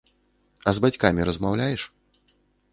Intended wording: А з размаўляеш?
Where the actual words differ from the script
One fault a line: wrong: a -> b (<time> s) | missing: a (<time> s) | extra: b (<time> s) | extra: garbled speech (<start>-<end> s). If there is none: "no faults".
extra: бацькамі (0.8 s)